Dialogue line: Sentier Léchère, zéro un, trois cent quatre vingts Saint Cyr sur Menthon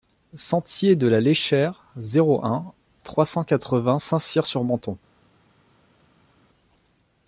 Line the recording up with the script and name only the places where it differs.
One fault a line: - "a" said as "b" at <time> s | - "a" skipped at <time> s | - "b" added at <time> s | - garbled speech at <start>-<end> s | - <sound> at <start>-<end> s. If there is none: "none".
- "de la" added at 0.9 s